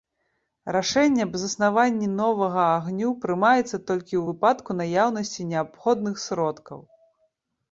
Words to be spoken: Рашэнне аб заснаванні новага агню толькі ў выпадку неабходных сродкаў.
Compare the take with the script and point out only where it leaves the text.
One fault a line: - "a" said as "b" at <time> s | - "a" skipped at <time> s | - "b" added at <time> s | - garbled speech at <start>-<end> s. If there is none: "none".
- "прымаецца" added at 3.2 s
- "наяўнасці" added at 4.8 s